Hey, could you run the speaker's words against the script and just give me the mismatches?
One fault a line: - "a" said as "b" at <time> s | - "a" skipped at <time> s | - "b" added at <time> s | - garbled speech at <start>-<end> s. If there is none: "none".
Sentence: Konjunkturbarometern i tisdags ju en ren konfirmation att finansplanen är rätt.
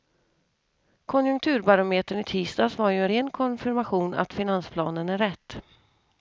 - "var" added at 2.8 s